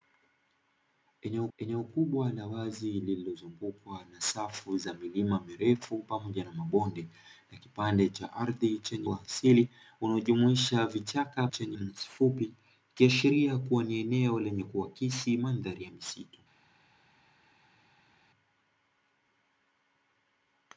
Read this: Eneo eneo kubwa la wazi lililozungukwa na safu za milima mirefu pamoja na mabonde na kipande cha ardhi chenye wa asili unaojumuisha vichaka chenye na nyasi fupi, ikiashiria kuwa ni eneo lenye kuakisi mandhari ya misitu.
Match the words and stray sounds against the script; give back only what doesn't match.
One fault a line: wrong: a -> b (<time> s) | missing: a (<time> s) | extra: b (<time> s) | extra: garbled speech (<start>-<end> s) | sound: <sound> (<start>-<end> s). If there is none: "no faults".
no faults